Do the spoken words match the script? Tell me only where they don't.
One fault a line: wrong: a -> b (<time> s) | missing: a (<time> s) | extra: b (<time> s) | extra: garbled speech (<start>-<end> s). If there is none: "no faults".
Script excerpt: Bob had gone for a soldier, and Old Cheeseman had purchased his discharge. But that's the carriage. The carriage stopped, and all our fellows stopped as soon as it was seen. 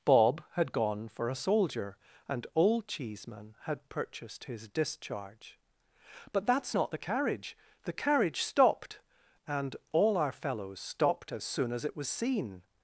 extra: not (6.7 s)